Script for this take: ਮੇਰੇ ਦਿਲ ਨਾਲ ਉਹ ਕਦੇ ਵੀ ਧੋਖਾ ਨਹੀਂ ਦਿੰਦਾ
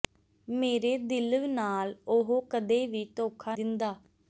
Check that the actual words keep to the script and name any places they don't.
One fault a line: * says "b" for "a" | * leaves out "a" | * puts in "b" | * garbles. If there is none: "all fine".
* leaves out "ਨਹੀਂ"